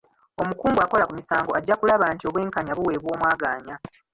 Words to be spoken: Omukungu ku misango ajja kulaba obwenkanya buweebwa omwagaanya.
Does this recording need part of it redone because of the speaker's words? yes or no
yes